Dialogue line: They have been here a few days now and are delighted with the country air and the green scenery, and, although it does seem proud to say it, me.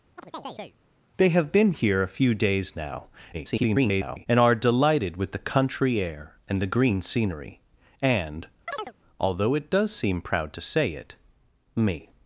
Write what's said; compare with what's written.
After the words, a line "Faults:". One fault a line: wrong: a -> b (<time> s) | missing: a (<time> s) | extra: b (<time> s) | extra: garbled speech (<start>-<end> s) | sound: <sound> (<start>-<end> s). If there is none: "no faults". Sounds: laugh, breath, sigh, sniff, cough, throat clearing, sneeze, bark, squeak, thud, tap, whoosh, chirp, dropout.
They have been here a few days now [garbled] and are delighted with the country air and the green scenery, and, although it does seem proud to say it, me.
Faults:
sound: chirp (0.2-0.8 s)
extra: garbled speech (3.3-4.3 s)
sound: chirp (8.7-8.9 s)